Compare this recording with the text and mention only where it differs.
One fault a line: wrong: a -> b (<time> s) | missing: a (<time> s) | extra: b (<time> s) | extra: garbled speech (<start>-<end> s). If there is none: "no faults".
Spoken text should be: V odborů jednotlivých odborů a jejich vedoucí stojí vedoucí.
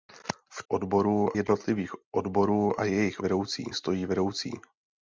no faults